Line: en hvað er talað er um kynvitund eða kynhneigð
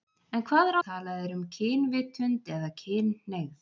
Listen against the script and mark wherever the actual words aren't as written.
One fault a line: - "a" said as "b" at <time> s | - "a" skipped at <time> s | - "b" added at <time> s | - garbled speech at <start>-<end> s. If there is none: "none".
none